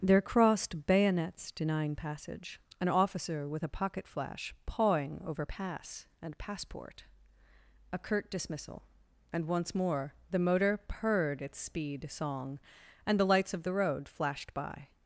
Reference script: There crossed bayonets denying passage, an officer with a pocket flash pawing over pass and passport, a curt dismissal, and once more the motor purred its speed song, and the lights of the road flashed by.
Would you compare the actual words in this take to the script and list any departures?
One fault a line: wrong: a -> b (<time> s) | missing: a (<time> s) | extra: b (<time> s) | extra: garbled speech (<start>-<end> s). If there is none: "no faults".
no faults